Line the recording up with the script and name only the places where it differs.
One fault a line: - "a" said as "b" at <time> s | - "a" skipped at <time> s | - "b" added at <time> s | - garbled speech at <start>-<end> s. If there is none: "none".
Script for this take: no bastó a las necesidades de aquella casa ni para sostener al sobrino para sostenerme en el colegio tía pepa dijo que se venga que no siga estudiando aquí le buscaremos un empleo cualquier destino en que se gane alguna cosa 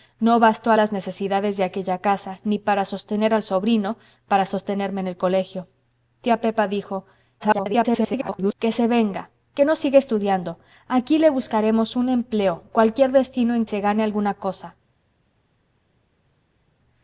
- garbled speech at 7.4-8.5 s
- "que" skipped at 13.7 s